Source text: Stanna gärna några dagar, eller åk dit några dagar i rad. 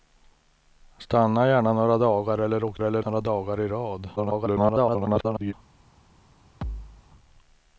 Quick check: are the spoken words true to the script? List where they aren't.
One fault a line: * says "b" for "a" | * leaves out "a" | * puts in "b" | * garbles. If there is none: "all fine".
* says "eller" for "dit"
* garbles